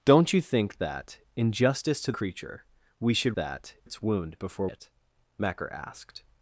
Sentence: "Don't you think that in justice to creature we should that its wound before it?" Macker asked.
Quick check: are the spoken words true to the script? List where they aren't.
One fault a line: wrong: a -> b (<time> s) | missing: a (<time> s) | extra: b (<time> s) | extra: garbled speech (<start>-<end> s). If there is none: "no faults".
no faults